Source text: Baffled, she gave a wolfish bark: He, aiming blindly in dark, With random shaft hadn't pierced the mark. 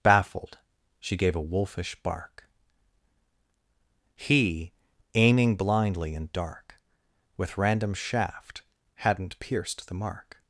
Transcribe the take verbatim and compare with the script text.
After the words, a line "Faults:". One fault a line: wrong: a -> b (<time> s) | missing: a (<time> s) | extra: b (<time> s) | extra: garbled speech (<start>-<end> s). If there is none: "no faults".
Baffled, she gave a wolfish bark: He, aiming blindly in dark, With random shaft hadn't pierced the mark.
Faults:
no faults